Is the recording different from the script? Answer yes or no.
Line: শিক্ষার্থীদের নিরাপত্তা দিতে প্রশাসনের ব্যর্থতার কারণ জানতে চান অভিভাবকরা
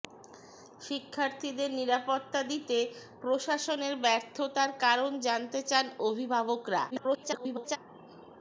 yes